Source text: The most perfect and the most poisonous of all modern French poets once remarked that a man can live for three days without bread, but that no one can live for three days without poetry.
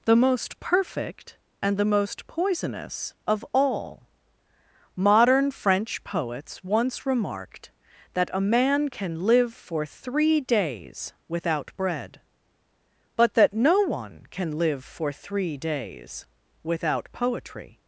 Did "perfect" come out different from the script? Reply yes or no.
no